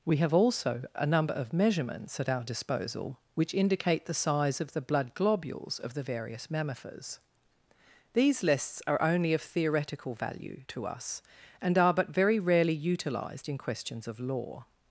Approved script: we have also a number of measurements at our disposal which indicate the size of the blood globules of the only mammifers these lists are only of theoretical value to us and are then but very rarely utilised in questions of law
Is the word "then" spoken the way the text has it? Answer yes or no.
no